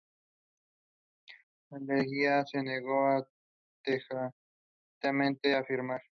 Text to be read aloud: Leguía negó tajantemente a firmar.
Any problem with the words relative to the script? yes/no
yes